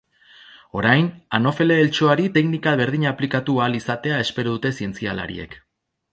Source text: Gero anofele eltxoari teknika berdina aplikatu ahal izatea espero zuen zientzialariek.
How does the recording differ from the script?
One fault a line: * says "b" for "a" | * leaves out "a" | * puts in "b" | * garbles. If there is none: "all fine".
* says "Orain" for "Gero"
* says "dute" for "zuen"